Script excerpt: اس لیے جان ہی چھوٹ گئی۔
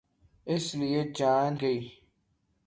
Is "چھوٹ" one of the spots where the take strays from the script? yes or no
yes